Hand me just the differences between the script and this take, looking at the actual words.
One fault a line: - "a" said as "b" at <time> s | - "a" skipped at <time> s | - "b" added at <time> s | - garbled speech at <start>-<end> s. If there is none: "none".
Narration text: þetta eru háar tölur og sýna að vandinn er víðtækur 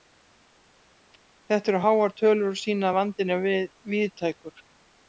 none